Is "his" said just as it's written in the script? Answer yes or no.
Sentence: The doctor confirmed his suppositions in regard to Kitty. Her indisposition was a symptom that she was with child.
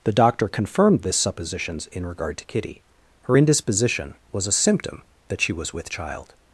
no